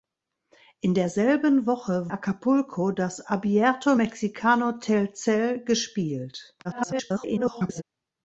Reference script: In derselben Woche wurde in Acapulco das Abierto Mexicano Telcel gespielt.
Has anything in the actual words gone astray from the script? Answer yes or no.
yes